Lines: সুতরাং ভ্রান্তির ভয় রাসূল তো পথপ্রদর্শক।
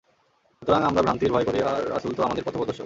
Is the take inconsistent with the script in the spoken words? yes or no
yes